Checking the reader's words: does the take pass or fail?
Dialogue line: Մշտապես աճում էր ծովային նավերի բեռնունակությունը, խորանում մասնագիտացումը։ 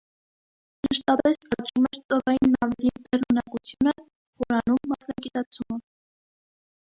pass